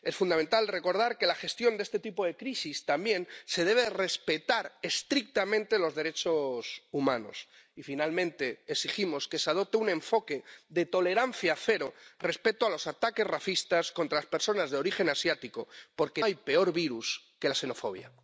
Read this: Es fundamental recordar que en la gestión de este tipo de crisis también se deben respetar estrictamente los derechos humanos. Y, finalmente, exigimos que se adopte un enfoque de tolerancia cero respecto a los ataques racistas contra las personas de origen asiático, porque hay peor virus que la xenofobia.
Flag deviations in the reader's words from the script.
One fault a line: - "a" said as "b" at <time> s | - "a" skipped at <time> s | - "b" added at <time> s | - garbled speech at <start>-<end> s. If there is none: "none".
none